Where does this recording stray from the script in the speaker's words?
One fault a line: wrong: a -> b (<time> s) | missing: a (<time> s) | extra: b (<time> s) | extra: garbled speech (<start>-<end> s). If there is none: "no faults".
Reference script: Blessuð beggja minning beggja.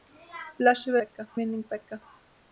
no faults